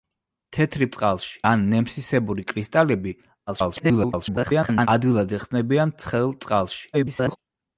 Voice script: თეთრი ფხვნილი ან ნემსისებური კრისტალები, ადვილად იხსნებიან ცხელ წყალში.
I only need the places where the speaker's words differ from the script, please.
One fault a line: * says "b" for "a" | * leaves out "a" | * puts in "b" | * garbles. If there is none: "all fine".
* says "წყალში" for "ფხვნილი"
* garbles
* garbles